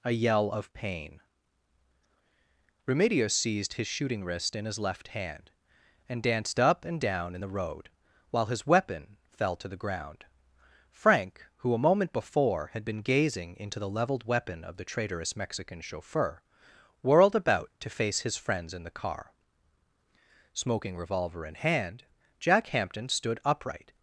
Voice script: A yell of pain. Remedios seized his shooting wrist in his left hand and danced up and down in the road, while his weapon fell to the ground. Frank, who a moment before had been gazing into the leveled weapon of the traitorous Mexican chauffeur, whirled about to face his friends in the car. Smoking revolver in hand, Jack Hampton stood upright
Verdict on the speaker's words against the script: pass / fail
pass